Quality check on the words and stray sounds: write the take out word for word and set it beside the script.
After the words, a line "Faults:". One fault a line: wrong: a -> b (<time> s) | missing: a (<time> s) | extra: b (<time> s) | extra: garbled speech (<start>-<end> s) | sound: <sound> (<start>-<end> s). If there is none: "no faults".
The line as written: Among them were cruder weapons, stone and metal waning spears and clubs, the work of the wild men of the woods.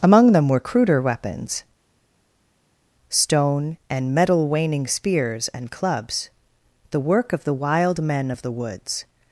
Among them were cruder weapons, stone and metal waning spears and clubs, the work of the wild men of the woods.
Faults:
no faults